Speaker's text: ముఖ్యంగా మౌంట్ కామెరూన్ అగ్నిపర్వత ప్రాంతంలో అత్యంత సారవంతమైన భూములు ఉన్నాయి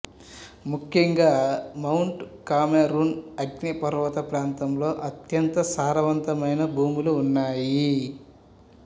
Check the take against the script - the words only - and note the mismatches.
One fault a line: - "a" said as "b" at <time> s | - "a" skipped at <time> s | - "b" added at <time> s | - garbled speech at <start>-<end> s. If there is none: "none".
none